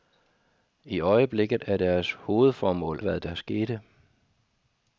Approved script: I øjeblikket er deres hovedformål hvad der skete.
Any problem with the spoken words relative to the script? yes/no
no